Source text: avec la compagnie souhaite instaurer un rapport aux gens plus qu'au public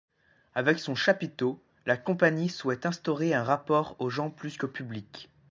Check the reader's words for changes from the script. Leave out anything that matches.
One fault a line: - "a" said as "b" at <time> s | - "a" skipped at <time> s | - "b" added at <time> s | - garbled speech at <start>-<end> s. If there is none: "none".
- "son chapiteau" added at 0.8 s